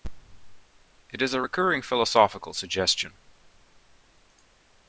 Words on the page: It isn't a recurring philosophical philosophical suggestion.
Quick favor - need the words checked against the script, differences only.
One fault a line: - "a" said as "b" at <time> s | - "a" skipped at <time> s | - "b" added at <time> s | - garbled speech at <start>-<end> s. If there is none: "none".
- "isn't" said as "is" at 1.2 s
- "philosophical" skipped at 2.5 s